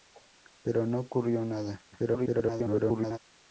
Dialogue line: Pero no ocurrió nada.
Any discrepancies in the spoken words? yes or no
yes